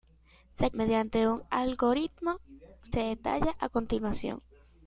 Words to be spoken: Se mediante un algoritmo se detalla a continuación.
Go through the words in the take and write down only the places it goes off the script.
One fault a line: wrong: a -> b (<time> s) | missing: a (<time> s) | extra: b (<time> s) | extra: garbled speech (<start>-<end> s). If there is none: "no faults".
no faults